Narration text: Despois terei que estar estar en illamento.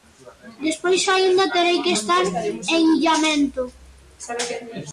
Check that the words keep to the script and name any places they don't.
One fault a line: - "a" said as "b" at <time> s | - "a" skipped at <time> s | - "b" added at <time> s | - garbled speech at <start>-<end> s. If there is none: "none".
- "aínda" added at 1.1 s
- "estar" skipped at 2.2 s